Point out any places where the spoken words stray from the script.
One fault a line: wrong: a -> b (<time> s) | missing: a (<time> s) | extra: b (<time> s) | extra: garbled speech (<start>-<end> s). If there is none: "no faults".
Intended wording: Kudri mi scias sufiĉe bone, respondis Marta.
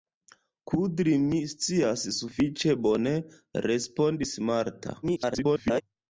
extra: garbled speech (5.0-5.8 s)